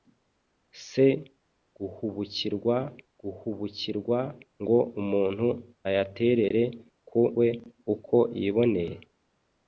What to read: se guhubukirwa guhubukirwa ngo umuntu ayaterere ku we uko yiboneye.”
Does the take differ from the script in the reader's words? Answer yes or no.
no